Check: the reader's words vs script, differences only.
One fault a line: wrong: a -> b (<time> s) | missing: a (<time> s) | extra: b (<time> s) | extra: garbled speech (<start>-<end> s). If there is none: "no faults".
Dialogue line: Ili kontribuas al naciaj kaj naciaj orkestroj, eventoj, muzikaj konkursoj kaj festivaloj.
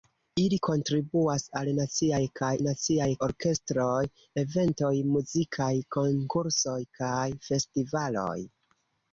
no faults